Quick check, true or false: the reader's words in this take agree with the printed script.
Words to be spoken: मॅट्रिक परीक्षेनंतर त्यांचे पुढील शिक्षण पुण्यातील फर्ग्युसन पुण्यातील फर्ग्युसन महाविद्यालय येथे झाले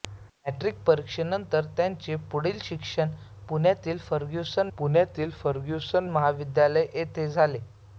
true